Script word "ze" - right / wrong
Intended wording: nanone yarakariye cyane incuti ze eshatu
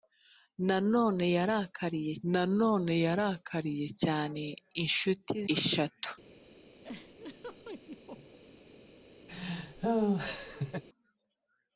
wrong